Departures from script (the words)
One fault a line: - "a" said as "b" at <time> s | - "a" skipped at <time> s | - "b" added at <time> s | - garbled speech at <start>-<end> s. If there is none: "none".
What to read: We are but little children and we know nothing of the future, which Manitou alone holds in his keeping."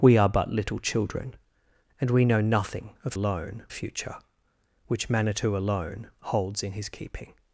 - "the" said as "alone" at 3.1 s